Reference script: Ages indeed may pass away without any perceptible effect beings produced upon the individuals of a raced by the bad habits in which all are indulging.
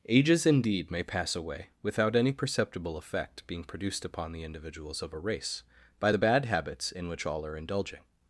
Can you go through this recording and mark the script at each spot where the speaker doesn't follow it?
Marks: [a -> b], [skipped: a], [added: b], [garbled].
Ages indeed may pass away without any perceptible effect [beings -> being] produced upon the individuals of a [raced -> race] by the bad habits in which all are indulging.